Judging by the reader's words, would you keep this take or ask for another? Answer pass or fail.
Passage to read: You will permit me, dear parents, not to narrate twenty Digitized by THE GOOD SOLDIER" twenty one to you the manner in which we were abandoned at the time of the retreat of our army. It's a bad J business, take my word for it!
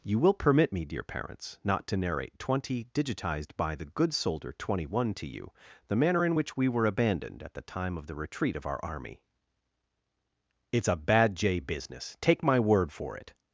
pass